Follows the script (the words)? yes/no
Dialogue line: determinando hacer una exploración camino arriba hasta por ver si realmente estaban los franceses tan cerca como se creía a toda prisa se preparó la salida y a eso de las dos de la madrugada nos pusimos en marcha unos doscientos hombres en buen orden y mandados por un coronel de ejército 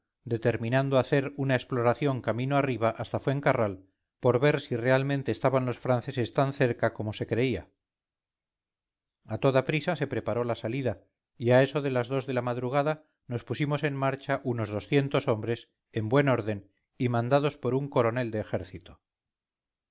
no